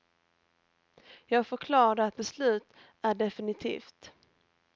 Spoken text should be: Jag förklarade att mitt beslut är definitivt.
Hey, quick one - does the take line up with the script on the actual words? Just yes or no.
no